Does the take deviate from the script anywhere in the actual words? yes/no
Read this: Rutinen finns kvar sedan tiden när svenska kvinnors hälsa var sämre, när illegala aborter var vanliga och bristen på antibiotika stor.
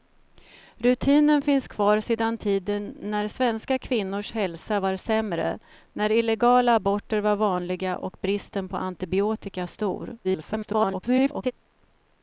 yes